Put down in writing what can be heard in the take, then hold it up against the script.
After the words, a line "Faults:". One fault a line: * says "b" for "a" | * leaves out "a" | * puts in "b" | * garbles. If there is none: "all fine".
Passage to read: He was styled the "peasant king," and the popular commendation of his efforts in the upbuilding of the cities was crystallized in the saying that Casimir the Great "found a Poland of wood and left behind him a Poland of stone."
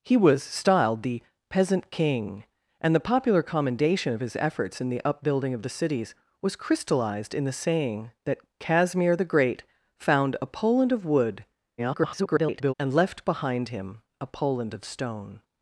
He was styled the "peasant king," and the popular commendation of his efforts in the upbuilding of the cities was crystallized in the saying that Casimir the Great "found a Poland of wood [garbled] and left behind him a Poland of stone."
Faults:
* garbles